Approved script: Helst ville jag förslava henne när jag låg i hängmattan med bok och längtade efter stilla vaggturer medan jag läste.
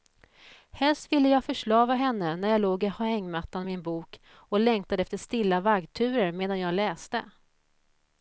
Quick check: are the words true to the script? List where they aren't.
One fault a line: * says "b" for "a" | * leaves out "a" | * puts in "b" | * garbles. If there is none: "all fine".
* puts in "en"